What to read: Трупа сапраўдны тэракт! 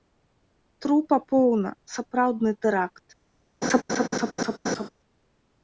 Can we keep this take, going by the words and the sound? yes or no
no